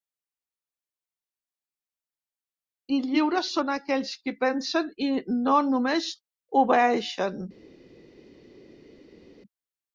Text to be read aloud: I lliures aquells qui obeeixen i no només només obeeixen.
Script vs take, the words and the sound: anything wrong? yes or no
yes